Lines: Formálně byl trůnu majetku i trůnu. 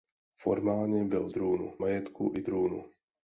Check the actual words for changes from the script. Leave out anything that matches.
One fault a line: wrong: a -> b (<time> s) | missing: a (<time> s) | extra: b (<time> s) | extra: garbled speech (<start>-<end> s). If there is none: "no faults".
no faults